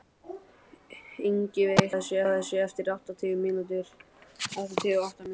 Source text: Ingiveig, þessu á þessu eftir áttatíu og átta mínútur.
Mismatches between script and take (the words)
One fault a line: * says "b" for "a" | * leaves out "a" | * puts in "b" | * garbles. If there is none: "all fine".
all fine